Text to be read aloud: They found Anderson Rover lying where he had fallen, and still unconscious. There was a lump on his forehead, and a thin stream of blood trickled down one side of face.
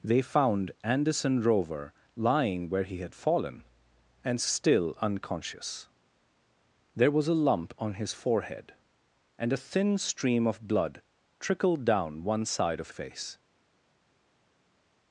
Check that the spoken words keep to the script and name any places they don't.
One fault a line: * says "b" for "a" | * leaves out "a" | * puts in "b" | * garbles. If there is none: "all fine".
all fine